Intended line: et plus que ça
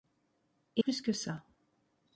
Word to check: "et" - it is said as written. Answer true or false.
true